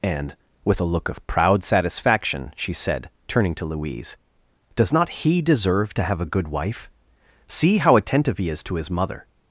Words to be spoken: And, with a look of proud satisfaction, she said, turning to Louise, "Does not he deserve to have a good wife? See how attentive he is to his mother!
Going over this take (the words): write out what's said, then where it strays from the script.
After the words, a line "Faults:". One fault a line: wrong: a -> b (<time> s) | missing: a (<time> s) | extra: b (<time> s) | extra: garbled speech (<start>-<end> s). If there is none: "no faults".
And, with a look of proud satisfaction, she said, turning to Louise, "Does not he deserve to have a good wife? See how attentive he is to his mother!
Faults:
no faults